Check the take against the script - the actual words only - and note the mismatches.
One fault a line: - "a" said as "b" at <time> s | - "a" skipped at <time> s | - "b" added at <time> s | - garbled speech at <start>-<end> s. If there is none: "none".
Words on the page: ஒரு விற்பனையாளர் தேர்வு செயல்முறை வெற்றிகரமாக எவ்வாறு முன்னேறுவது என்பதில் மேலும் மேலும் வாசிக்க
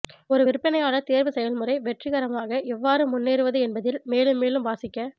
none